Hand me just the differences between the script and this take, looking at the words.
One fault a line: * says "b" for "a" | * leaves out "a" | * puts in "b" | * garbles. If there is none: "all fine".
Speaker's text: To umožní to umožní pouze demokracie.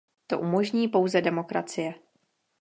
* leaves out "to umožní"